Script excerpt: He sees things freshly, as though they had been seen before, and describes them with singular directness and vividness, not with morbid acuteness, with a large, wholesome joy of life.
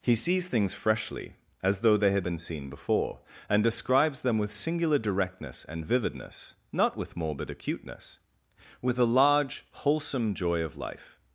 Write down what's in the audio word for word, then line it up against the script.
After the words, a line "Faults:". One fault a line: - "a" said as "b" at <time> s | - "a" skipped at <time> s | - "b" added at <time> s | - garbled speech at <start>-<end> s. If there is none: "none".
He sees things freshly, as though they had been seen before, and describes them with singular directness and vividness, not with morbid acuteness, with a large, wholesome joy of life.
Faults:
none